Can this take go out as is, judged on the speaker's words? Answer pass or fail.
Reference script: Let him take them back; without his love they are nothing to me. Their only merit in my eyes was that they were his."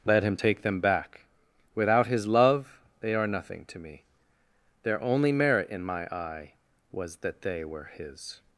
fail